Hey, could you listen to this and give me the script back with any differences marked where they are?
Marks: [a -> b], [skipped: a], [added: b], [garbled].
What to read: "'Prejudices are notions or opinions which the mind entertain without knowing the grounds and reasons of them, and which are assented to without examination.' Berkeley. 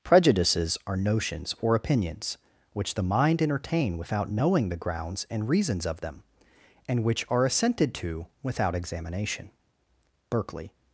"'Prejudices are notions or opinions which the mind entertain without knowing the grounds and reasons of them, and which are assented to without examination.' Berkeley.